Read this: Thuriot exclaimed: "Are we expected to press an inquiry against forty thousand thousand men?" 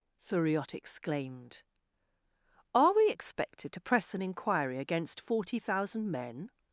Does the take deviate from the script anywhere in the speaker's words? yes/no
yes